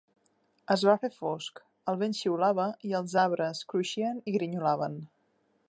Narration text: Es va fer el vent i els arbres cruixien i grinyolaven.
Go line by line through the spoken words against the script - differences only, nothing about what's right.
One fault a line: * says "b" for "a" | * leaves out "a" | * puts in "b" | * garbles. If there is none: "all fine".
* puts in "fosc"
* puts in "xiulava"